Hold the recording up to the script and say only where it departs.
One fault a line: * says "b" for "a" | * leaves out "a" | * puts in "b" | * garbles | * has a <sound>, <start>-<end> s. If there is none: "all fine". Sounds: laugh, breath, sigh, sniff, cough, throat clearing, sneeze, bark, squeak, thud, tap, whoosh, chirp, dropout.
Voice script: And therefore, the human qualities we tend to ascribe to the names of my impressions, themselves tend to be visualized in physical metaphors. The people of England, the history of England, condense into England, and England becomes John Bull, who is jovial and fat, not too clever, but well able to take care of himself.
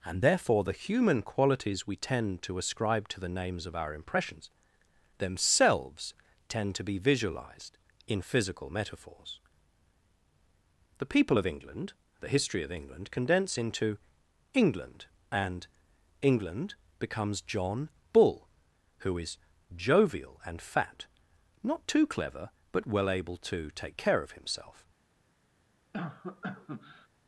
* says "our" for "my"
* has a cough, 25.9-27.1 s